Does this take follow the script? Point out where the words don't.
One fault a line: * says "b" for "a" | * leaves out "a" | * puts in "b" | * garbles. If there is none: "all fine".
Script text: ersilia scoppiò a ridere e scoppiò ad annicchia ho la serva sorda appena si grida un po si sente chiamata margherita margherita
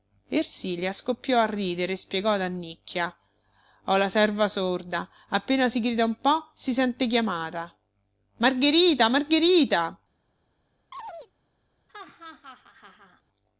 * says "spiegò" for "scoppiò"